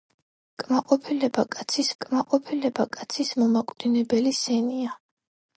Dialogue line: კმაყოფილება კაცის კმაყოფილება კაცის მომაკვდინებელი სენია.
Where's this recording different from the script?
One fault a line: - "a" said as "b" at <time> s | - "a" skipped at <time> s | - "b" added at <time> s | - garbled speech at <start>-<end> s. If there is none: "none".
none